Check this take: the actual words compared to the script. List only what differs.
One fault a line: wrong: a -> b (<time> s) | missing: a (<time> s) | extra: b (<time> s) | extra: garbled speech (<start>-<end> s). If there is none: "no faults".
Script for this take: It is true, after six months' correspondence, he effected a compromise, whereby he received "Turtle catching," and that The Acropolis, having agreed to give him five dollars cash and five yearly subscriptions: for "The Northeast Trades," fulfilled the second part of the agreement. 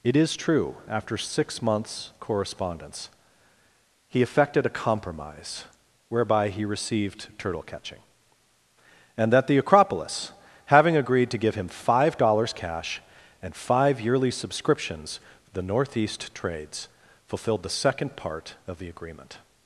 no faults